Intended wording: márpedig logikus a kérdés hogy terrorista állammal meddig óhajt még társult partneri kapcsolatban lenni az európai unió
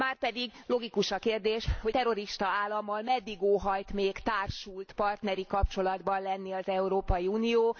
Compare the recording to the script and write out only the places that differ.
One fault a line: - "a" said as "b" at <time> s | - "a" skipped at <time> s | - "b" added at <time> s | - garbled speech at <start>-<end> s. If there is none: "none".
none